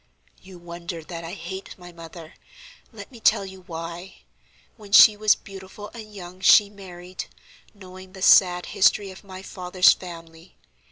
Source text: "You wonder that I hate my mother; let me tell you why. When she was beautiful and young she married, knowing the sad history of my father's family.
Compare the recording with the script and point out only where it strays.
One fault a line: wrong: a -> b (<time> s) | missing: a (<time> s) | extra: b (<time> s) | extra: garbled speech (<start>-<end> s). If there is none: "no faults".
no faults